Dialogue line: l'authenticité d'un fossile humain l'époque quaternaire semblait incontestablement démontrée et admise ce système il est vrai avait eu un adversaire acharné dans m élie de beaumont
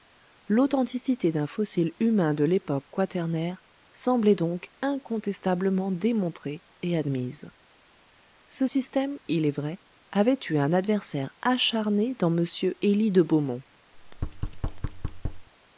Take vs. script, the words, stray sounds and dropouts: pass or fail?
fail